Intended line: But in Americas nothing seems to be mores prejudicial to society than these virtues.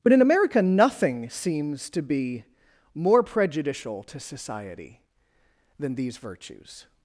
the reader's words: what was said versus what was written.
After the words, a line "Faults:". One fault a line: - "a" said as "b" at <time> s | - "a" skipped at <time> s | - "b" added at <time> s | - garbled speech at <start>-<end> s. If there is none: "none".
But in America nothing seems to be more prejudicial to society than these virtues.
Faults:
- "Americas" said as "America" at 0.2 s
- "mores" said as "more" at 2.9 s